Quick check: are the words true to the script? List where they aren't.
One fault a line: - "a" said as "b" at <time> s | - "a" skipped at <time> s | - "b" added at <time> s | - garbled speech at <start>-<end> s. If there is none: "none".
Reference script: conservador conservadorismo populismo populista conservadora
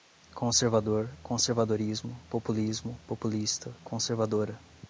none